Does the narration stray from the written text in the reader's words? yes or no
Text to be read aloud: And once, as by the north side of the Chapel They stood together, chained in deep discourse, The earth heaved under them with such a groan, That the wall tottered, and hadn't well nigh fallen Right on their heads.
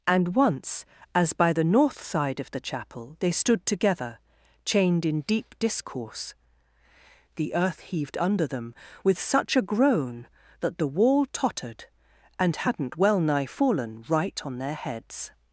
no